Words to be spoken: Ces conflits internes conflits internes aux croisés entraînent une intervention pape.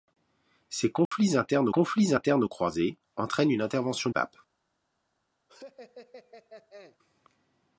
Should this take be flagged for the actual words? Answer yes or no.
no